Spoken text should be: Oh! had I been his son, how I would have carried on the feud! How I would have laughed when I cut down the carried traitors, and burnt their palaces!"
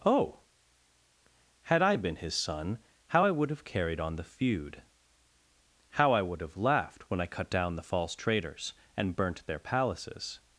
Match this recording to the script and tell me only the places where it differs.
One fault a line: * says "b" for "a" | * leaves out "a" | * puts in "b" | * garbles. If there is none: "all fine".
* says "false" for "carried"